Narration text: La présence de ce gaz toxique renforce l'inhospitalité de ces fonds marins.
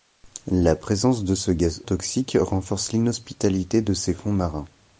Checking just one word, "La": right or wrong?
right